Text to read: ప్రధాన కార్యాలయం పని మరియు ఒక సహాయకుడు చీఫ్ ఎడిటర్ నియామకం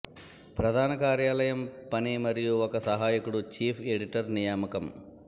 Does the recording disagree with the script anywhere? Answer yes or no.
no